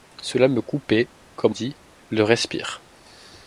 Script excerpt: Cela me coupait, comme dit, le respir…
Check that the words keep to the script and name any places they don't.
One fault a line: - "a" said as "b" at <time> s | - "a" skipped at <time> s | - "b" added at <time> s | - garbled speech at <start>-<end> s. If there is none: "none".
none